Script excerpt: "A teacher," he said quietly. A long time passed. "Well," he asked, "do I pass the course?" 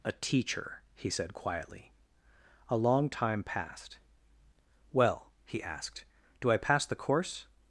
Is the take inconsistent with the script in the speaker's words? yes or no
no